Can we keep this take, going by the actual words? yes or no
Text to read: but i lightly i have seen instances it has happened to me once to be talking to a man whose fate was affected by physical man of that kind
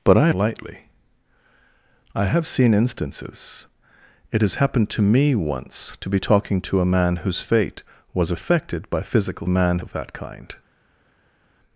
yes